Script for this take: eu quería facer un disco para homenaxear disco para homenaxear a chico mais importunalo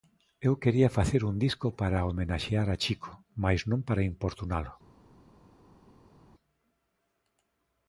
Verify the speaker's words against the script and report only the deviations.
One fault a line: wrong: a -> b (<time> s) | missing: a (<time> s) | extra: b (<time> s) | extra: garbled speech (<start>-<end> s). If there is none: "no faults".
missing: disco para homenaxear (2.7 s)
extra: non para (3.7 s)